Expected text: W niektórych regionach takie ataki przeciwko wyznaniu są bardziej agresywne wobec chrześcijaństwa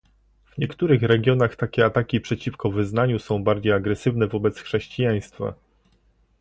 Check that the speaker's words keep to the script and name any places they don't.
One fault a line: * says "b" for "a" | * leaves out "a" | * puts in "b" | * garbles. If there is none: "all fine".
all fine